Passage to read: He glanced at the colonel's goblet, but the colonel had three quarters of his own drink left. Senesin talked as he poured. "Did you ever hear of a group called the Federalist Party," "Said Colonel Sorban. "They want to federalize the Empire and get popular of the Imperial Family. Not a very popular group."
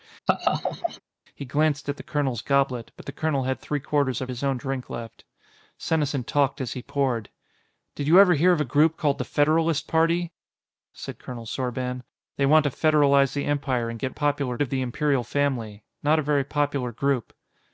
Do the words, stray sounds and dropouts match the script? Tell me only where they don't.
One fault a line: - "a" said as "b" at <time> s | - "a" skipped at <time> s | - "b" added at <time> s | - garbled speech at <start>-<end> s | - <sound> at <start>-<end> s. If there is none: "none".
- laugh at 0.3-1.0 s